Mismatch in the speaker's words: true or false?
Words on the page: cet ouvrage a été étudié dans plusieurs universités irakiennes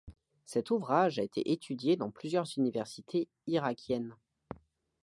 false